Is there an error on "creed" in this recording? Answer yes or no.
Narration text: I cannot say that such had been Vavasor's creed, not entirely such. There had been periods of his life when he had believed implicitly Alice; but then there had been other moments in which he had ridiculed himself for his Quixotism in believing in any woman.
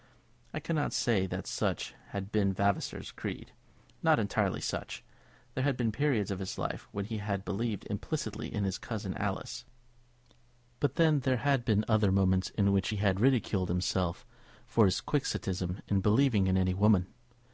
no